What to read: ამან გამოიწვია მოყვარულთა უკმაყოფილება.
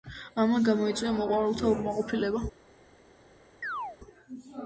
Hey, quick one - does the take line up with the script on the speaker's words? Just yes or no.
yes